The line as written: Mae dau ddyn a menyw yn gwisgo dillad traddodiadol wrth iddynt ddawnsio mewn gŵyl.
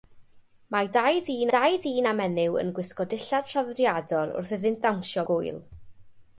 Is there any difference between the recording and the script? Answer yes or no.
yes